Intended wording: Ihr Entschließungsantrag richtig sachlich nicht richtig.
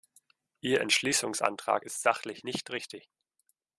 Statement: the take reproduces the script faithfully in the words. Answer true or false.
false